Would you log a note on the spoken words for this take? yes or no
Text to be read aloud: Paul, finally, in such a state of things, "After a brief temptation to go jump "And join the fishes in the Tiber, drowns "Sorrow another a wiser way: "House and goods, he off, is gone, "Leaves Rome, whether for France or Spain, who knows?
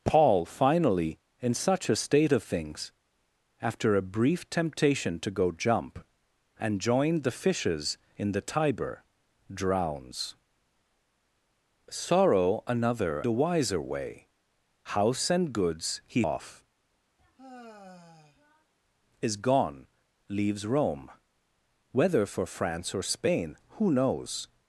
no